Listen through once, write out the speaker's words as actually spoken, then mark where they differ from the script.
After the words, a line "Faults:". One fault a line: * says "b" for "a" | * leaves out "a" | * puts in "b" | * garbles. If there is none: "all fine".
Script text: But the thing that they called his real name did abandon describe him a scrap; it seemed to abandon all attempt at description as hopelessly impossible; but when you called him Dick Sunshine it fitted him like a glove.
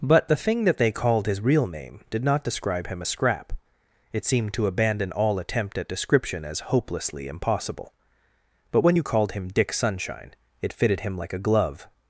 But the thing that they called his real name did not describe him a scrap; it seemed to abandon all attempt at description as hopelessly impossible; but when you called him Dick Sunshine it fitted him like a glove.
Faults:
* says "not" for "abandon"